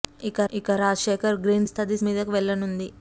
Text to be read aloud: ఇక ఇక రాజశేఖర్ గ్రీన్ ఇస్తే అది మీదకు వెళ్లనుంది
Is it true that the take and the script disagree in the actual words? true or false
false